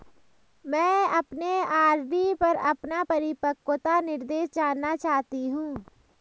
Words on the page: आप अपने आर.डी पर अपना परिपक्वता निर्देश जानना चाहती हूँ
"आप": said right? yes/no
no